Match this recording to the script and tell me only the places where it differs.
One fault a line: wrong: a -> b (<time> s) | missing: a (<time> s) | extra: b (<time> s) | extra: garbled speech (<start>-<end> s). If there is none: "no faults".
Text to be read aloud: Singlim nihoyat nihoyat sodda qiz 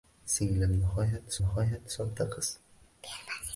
no faults